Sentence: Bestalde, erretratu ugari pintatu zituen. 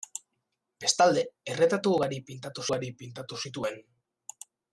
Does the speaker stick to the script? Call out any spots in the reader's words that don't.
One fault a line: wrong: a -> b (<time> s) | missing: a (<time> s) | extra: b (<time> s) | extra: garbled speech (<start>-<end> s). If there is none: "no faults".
extra: ugari pintatu (2.7 s)